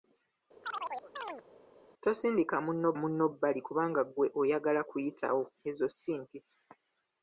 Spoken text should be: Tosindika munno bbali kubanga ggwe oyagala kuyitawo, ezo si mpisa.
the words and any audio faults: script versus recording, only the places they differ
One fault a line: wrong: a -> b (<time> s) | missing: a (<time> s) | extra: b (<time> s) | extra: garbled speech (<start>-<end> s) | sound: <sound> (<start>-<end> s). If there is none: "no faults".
sound: chirp (0.6-1.4 s)
extra: munno (3.0 s)